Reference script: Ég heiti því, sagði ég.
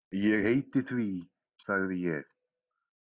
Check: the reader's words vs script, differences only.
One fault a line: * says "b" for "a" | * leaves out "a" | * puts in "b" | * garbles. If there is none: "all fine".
all fine